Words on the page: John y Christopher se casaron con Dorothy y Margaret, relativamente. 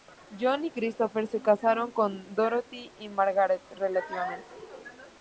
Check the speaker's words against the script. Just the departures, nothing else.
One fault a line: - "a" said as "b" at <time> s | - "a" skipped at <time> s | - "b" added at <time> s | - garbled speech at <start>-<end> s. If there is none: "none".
none